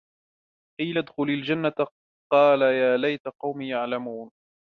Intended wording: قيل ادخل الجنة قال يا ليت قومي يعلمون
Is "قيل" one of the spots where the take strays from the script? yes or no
no